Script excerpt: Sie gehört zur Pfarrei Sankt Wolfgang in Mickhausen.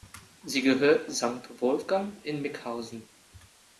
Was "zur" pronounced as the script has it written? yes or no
no